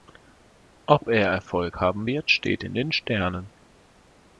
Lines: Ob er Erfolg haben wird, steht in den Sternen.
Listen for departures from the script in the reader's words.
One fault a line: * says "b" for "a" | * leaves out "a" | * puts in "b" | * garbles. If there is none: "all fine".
all fine